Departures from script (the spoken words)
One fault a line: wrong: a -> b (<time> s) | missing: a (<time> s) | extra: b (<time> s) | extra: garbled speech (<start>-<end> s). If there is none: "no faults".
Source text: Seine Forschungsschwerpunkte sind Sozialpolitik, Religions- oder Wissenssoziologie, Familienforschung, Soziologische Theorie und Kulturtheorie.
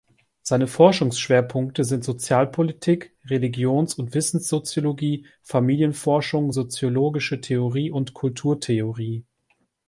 wrong: oder -> und (3.9 s)